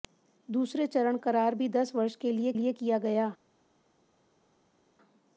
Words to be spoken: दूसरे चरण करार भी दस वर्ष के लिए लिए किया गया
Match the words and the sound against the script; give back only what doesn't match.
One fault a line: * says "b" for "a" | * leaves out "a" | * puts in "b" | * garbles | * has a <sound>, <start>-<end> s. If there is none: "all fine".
all fine